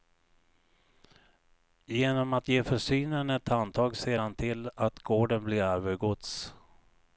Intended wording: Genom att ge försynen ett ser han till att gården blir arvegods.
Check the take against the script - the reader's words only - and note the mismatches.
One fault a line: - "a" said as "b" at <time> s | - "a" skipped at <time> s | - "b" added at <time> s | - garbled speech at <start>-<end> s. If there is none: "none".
- "handtag" added at 3.5 s